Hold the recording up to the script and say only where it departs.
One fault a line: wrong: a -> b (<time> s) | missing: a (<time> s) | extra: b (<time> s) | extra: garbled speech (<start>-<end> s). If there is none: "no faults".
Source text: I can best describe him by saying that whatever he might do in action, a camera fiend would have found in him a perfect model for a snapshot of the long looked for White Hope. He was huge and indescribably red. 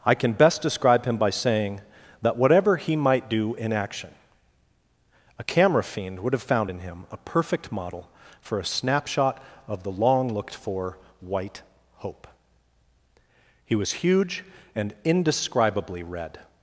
no faults